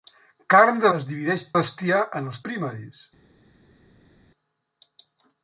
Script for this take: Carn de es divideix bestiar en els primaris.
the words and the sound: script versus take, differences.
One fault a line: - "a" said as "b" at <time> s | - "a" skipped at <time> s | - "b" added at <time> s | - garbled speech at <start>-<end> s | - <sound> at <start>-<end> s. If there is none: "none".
none